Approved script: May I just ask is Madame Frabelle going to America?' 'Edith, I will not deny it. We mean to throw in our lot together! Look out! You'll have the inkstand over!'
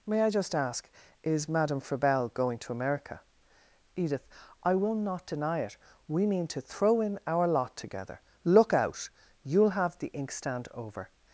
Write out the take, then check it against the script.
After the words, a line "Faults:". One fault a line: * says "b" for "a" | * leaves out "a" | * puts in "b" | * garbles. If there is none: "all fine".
May I just ask is Madame Frabelle going to America?' 'Edith, I will not deny it. We mean to throw in our lot together! Look out! You'll have the inkstand over!'
Faults:
all fine